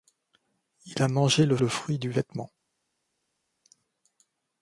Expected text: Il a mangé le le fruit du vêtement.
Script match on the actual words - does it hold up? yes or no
yes